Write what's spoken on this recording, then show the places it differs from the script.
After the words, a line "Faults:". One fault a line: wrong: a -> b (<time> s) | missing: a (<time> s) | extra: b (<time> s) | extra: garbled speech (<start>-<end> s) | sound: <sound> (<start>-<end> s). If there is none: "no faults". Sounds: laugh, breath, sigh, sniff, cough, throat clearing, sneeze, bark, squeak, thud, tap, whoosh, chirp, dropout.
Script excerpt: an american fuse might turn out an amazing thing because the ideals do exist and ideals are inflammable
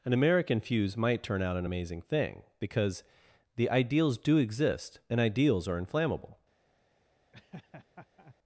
an american fuse might turn out an amazing thing because the ideals do exist and ideals are inflammable
Faults:
sound: laugh (7.3-8.4 s)